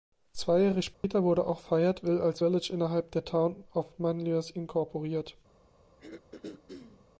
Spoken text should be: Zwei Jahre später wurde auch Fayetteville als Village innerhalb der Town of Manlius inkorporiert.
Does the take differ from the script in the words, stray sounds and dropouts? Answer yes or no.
yes